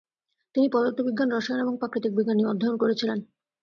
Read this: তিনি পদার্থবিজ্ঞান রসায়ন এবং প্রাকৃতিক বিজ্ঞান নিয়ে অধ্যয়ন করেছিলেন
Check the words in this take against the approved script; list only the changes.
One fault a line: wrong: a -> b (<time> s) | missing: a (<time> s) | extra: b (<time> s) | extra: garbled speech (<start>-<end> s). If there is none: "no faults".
no faults